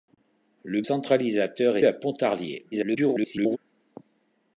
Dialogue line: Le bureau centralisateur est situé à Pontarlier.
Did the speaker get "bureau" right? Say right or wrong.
wrong